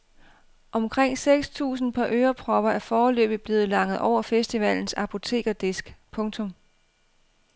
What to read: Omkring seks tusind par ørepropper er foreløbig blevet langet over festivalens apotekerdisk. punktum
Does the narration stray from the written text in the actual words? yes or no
no